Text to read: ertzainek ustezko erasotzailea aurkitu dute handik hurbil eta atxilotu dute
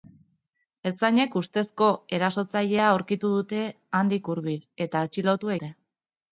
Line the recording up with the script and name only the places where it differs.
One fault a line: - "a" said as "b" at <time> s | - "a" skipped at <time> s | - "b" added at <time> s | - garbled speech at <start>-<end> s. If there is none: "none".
none